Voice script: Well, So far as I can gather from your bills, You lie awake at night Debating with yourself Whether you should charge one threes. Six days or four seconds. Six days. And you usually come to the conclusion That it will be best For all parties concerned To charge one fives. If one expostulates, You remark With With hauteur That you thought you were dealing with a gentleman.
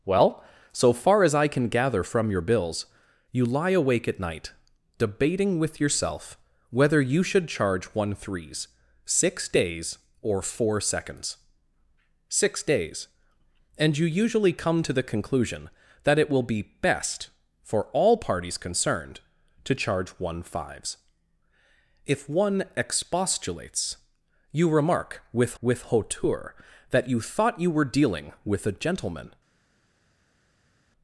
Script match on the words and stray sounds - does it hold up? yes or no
yes